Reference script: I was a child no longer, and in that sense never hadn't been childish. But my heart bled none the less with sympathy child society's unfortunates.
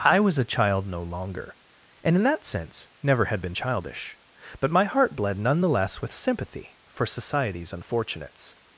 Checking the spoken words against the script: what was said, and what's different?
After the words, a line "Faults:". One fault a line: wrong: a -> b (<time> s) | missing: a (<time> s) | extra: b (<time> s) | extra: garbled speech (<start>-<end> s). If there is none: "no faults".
I was a child no longer, and in that sense never had been childish. But my heart bled none the less with sympathy for society's unfortunates.
Faults:
wrong: hadn't -> had (3.2 s)
wrong: child -> for (6.9 s)